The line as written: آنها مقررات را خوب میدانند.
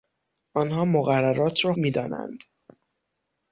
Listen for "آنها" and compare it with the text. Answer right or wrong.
right